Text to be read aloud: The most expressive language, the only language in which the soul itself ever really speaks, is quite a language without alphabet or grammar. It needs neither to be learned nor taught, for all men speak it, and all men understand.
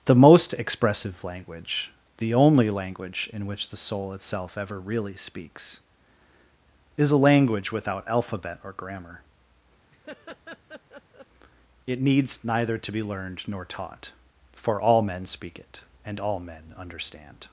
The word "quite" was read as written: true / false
false